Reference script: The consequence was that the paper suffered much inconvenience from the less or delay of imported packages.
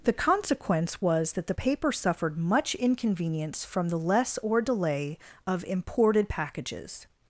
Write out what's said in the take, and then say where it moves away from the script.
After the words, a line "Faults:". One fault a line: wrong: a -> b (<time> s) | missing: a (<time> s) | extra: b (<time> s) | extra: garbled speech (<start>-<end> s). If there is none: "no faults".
The consequence was that the paper suffered much inconvenience from the less or delay of imported packages.
Faults:
no faults